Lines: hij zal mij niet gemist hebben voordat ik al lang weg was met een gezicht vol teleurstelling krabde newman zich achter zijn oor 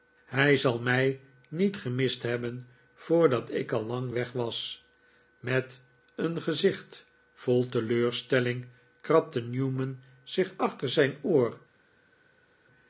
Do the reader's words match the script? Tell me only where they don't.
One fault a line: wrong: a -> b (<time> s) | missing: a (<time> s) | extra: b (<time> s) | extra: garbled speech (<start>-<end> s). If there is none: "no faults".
no faults